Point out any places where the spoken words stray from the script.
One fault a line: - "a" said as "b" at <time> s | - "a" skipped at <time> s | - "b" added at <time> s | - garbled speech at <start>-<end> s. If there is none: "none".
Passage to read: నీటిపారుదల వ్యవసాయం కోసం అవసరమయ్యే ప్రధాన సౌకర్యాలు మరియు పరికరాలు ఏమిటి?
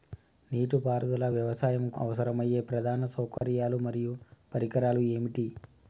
- "కోసం" skipped at 1.9 s